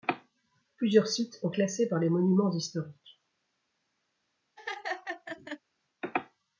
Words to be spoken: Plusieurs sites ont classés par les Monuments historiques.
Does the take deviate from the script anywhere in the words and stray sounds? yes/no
yes